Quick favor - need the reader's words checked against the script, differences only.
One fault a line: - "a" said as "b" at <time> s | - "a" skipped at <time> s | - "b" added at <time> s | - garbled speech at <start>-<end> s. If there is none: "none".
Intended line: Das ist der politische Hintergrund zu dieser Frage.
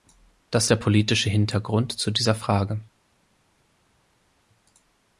- "ist" skipped at 0.7 s